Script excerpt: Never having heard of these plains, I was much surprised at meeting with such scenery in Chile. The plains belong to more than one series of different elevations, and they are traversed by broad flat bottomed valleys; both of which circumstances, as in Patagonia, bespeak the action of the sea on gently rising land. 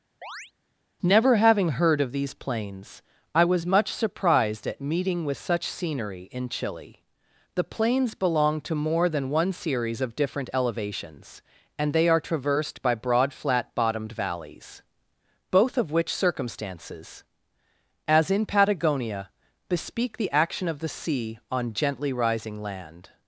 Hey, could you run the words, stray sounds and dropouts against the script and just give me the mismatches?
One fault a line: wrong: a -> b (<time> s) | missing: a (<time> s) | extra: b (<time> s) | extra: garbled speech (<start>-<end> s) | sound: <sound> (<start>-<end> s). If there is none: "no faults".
sound: chirp (0.2-0.5 s)